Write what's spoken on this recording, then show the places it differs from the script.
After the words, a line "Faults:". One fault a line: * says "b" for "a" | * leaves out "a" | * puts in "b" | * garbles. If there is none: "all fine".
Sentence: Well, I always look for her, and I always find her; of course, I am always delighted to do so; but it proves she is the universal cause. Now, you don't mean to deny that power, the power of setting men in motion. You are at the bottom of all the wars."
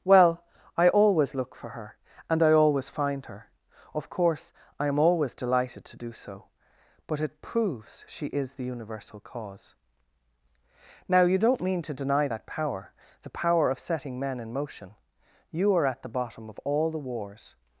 Well, I always look for her, and I always find her; of course, I am always delighted to do so; but it proves she is the universal cause. Now, you don't mean to deny that power, the power of setting men in motion. You are at the bottom of all the wars."
Faults:
all fine